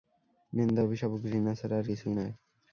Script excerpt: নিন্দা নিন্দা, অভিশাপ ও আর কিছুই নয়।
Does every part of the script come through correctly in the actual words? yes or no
no